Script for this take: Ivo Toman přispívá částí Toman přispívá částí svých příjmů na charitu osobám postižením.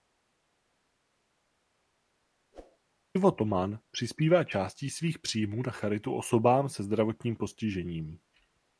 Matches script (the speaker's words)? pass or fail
fail